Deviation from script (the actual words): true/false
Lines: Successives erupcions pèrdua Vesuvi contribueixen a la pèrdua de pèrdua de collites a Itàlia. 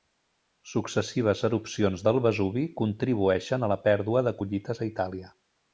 true